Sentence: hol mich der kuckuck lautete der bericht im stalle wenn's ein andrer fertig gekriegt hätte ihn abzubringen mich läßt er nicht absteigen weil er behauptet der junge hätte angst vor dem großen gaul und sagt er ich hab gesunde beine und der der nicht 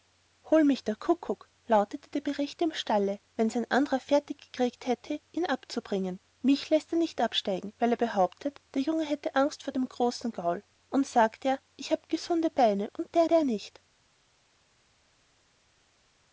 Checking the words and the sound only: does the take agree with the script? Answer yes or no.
yes